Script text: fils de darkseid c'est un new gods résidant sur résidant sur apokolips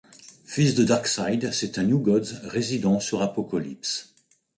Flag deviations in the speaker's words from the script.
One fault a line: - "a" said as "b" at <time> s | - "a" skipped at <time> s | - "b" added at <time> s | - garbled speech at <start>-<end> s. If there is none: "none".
- "résidant sur" skipped at 3.2 s